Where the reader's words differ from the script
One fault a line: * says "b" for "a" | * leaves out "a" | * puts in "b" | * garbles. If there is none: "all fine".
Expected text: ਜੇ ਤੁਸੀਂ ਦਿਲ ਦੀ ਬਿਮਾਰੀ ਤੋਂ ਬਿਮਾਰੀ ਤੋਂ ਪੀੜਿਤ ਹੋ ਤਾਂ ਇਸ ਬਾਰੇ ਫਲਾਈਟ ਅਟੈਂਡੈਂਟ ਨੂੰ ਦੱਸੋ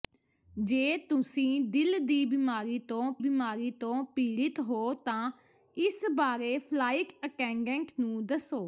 all fine